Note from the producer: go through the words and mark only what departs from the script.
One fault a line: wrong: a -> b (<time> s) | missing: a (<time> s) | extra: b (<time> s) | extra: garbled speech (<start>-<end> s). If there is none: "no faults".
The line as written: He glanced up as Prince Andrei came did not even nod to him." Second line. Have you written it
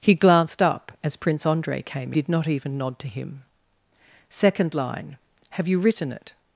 no faults